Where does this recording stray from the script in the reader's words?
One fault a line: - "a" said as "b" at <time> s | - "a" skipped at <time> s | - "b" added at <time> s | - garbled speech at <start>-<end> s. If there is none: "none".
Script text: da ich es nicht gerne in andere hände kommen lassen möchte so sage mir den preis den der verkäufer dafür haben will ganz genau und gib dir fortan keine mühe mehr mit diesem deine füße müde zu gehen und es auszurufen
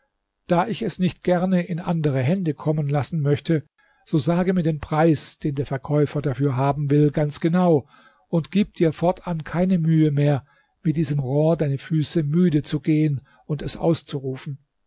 - "rohr" added at 11.2 s